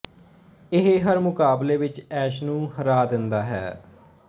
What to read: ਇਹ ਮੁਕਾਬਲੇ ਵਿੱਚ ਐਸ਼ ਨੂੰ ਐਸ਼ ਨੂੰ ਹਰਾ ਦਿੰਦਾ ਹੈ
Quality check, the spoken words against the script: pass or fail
fail